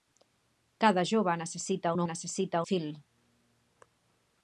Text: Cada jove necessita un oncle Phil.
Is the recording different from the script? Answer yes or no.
yes